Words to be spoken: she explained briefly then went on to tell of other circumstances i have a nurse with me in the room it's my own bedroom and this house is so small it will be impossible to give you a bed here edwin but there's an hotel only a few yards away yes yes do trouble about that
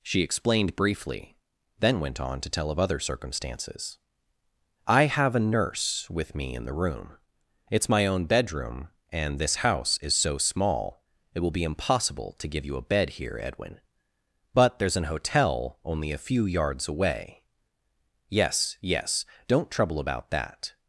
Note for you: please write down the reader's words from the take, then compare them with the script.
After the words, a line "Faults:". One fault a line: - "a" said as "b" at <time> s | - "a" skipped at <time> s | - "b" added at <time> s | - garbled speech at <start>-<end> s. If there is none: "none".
she explained briefly then went on to tell of other circumstances i have a nurse with me in the room it's my own bedroom and this house is so small it will be impossible to give you a bed here edwin but there's an hotel only a few yards away yes yes don't trouble about that
Faults:
- "do" said as "don't" at 19.5 s